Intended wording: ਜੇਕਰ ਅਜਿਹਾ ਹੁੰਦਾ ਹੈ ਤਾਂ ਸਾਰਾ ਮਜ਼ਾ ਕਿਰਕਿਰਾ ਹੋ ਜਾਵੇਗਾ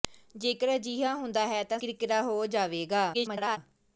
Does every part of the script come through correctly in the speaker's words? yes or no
no